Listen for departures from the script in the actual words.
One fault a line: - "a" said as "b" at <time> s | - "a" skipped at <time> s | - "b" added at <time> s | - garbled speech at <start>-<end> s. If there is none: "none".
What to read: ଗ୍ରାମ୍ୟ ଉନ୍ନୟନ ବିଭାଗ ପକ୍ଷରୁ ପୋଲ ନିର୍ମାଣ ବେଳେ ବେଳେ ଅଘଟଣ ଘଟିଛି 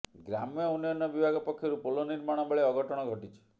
- "ବେଳେ" skipped at 2.7 s